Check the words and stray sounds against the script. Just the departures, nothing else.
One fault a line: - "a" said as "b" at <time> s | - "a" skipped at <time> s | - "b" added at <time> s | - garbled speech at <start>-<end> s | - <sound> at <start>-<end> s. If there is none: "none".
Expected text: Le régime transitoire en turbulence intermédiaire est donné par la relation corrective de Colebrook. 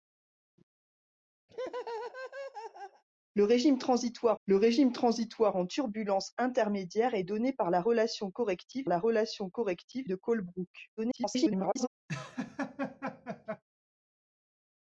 - laugh at 1.5-3.0 s
- "le régime transitoire" added at 4.5 s
- "la relation corrective" added at 8.9 s
- garbled speech at 11.0-11.9 s
- laugh at 12.1-13.6 s